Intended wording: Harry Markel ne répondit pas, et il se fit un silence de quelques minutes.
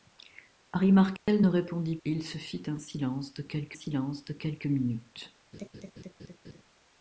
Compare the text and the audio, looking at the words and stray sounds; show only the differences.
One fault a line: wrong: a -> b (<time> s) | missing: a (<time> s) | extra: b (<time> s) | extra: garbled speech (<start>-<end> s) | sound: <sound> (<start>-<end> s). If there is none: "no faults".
sound: dropout (1.2-1.3 s)
missing: pas (2.0 s)
extra: silence de quelques (3.7 s)
sound: laugh (5.5-6.6 s)